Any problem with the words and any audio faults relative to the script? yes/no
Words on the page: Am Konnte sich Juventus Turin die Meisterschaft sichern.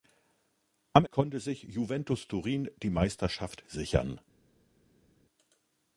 no